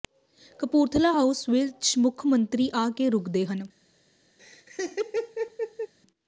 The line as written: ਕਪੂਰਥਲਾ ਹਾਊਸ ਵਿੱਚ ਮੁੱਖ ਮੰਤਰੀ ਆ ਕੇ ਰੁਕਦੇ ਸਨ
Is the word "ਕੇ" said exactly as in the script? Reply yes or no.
yes